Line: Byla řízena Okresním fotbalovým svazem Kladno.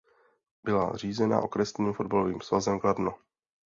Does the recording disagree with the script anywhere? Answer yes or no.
no